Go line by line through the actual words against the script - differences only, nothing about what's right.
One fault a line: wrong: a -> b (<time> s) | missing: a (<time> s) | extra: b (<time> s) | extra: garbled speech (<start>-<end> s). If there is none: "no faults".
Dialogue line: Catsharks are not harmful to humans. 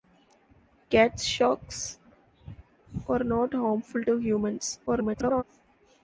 extra: garbled speech (4.9-5.4 s)